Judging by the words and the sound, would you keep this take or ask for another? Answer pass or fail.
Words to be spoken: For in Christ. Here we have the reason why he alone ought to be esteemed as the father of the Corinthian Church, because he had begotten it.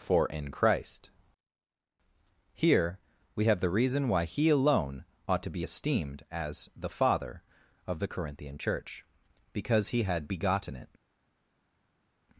pass